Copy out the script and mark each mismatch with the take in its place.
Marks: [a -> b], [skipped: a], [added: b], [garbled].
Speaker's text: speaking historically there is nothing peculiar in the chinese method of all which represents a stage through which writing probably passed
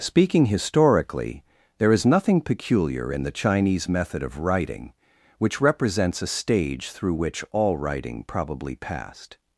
speaking historically there is nothing peculiar in the chinese method of [all -> writing] which represents a stage through which [added: all] writing probably passed